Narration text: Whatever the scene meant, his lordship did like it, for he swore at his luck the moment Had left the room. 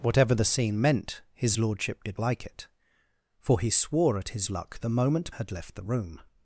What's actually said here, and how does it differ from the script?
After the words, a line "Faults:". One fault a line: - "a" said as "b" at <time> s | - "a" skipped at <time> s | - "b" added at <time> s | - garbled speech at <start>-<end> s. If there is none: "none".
Whatever the scene meant, his lordship did like it, for he swore at his luck the moment Had left the room.
Faults:
none